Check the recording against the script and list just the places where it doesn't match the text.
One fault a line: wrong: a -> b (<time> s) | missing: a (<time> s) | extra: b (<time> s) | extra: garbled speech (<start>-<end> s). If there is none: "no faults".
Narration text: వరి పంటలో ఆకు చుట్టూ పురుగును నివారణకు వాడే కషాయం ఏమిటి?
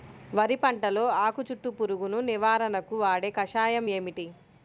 no faults